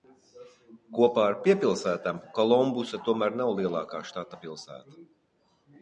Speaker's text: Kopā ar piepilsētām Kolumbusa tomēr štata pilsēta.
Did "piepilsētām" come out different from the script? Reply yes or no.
no